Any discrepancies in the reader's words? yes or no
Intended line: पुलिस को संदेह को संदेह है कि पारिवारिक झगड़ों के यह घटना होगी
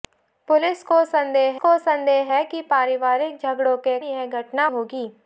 no